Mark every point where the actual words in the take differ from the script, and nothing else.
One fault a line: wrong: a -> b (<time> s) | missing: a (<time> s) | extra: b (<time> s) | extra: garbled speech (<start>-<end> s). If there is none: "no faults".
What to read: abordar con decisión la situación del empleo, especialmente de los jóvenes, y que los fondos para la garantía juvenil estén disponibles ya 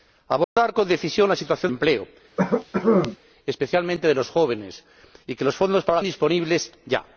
missing: del (1.7 s)
missing: garantía juvenil estén (6.0 s)